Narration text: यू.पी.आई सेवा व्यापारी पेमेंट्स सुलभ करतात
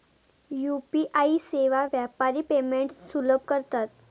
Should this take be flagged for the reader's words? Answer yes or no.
no